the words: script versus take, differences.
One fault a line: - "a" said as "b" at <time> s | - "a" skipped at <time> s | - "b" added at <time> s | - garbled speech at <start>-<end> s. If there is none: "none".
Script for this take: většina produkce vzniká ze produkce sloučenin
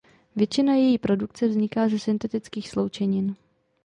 - "její" added at 0.7 s
- "produkce" said as "syntetických" at 2.0 s